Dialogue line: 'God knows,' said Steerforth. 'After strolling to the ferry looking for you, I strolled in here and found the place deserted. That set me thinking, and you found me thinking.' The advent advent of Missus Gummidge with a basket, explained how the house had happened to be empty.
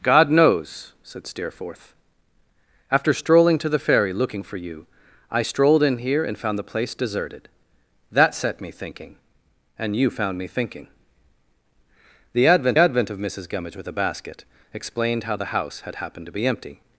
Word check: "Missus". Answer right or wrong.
right